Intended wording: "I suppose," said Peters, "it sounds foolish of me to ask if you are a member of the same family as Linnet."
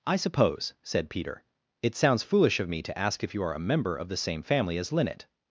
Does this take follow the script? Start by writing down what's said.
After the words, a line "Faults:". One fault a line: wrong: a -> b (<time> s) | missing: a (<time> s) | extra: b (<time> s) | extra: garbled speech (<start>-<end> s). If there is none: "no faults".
"I suppose," said Peter, "it sounds foolish of me to ask if you are a member of the same family as Linnet."
Faults:
wrong: Peters -> Peter (1.1 s)